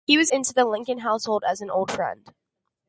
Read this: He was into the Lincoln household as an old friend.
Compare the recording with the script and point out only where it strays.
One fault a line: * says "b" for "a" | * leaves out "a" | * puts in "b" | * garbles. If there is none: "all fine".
all fine